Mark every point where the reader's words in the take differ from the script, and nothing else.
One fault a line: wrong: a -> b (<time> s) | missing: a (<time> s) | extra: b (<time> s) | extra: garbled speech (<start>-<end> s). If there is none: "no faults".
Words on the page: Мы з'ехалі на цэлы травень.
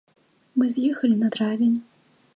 missing: цэлы (1.3 s)